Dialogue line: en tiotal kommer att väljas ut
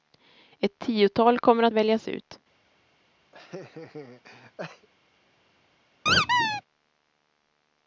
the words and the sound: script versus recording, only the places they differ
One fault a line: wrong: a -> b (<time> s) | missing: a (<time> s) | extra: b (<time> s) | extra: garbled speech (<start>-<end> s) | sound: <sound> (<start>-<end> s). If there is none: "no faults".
wrong: en -> ett (0.6 s)
sound: laugh (3.3-4.9 s)
sound: squeak (6.1-6.6 s)